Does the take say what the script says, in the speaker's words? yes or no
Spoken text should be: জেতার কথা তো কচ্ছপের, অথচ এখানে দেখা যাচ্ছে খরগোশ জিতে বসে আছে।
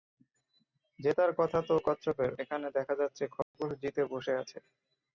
no